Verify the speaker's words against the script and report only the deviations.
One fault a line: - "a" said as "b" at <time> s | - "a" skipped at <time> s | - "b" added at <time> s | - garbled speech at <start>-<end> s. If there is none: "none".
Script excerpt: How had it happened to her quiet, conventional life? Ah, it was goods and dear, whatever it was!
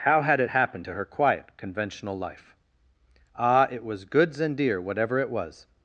none